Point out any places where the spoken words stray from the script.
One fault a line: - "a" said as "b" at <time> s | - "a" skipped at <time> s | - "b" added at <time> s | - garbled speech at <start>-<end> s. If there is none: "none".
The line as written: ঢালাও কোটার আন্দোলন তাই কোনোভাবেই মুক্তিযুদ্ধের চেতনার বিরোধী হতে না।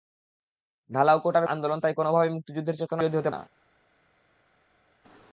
none